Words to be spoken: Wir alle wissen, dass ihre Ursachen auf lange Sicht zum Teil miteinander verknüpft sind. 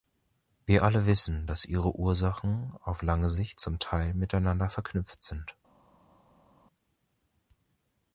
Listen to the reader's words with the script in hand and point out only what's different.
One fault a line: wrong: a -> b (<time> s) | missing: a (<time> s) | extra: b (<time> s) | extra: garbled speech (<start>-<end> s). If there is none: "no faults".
no faults